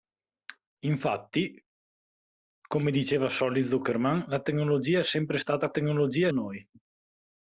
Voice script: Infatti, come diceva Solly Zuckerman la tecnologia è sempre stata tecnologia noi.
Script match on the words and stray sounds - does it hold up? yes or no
yes